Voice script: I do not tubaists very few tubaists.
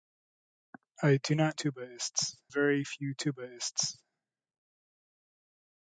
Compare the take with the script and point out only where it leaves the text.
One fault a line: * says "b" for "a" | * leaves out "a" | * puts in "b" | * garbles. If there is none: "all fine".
all fine